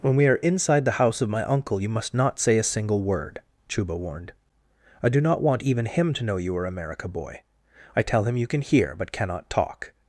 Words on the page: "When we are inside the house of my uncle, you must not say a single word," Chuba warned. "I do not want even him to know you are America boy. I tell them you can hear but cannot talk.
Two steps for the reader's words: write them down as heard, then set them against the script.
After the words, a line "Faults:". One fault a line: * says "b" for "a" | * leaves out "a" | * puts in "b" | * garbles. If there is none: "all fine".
"When we are inside the house of my uncle, you must not say a single word," Chuba warned. "I do not want even him to know you are America boy. I tell him you can hear but cannot talk.
Faults:
* says "him" for "them"